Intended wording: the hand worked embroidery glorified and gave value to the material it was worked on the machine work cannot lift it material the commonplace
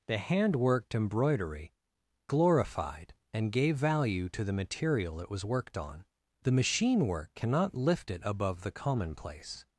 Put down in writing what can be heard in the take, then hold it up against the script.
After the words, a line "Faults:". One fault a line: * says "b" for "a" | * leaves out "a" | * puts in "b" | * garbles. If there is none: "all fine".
the hand worked embroidery glorified and gave value to the material it was worked on the machine work cannot lift it above the commonplace
Faults:
* says "above" for "material"